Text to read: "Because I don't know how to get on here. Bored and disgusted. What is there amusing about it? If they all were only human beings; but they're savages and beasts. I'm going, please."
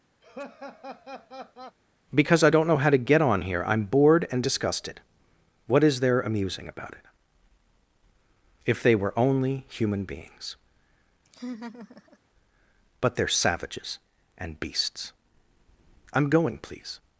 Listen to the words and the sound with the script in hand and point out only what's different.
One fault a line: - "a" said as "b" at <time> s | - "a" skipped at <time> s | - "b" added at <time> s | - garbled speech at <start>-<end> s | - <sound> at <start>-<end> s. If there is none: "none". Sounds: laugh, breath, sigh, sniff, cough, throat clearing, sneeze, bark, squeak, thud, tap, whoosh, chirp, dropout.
- laugh at 0.2-1.8 s
- "I'm" added at 3.7 s
- "all" skipped at 9.0 s
- laugh at 11.2-12.2 s